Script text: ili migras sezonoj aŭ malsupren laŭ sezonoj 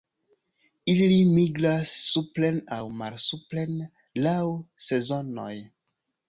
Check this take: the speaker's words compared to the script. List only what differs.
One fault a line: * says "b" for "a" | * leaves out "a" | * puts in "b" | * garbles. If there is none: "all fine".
* says "supren" for "sezonoj"